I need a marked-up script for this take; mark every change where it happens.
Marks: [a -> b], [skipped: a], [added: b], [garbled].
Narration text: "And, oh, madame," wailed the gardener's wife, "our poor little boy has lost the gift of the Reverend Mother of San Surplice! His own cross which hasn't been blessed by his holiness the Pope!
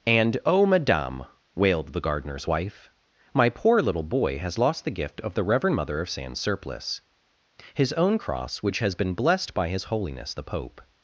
"And, oh, madame," wailed the gardener's wife, ["our -> my] poor little boy has lost the gift of the Reverend Mother of San Surplice! His own cross which [hasn't -> has] been blessed by his holiness the Pope!